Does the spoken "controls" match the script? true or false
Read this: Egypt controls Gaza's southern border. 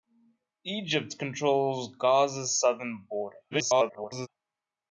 true